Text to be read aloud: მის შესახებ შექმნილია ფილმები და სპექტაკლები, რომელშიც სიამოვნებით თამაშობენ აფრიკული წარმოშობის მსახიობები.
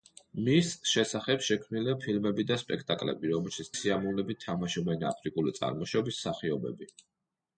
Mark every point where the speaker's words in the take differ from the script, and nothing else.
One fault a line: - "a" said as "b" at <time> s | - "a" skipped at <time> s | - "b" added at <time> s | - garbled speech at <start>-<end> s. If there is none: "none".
none